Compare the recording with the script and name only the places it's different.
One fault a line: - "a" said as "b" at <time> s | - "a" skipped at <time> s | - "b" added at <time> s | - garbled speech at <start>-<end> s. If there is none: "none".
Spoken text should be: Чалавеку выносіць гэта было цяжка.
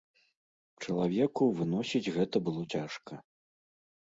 none